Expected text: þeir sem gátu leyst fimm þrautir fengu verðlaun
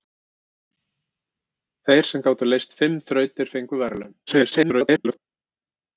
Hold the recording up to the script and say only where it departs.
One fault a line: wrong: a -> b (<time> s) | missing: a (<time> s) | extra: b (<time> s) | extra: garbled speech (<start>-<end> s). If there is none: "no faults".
extra: garbled speech (4.3-5.2 s)